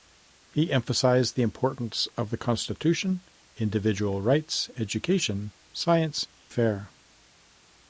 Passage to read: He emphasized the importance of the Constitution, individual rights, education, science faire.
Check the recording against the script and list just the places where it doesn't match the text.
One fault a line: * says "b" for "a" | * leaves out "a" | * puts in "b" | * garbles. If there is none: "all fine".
all fine